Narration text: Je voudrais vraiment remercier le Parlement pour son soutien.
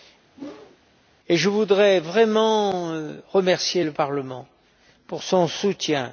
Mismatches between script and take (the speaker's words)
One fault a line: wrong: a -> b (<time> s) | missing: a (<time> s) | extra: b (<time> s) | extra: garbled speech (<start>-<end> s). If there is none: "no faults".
no faults